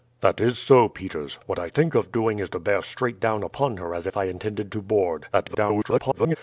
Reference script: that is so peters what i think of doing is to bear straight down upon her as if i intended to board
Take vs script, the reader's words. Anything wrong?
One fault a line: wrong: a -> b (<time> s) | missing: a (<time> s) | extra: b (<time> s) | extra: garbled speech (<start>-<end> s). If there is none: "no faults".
extra: garbled speech (5.3-6.4 s)